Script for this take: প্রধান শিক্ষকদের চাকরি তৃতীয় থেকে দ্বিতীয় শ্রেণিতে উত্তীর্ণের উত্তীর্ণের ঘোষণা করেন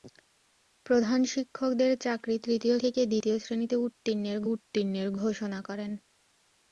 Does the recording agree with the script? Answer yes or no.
yes